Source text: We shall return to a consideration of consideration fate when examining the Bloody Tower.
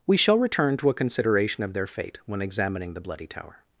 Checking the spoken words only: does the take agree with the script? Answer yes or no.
no